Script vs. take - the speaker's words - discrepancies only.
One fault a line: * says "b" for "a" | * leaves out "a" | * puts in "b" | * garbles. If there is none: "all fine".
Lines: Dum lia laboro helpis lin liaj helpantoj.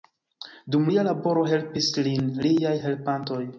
all fine